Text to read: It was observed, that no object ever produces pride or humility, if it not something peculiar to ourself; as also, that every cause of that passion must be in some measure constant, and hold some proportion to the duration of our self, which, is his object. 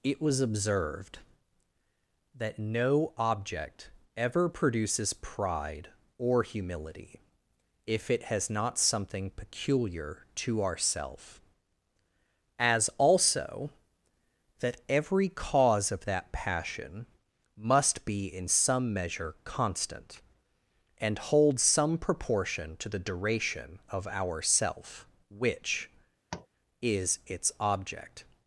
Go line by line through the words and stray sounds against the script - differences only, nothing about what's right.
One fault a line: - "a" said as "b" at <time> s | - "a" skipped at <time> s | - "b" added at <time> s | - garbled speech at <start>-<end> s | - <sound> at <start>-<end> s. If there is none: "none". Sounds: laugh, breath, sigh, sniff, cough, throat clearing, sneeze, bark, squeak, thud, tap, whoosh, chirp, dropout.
- "has" added at 8.2 s
- tap at 26.3-26.5 s
- "his" said as "its" at 27.3 s